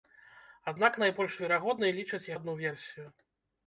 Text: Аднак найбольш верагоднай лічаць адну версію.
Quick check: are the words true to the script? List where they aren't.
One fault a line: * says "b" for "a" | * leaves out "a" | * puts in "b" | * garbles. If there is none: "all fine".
all fine